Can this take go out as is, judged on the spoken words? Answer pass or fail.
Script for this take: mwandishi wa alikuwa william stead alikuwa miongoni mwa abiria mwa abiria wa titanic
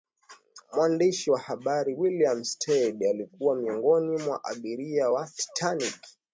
fail